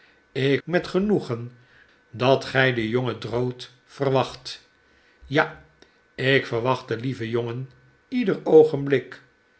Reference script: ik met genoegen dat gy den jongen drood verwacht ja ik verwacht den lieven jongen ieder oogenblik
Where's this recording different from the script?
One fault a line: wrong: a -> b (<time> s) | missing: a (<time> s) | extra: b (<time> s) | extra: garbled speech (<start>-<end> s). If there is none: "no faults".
no faults